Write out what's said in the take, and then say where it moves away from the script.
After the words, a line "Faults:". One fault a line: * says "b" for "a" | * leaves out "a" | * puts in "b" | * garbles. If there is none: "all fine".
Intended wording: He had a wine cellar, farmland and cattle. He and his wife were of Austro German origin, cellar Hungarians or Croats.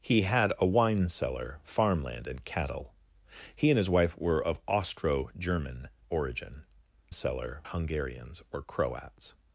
He had a wine cellar, farmland and cattle. He and his wife were of Austro German origin, cellar Hungarians or Croats.
Faults:
all fine